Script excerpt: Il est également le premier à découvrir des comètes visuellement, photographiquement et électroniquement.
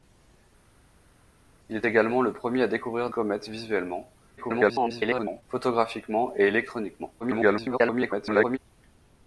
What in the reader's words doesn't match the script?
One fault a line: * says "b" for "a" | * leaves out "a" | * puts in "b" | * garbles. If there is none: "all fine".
* leaves out "des"
* garbles
* garbles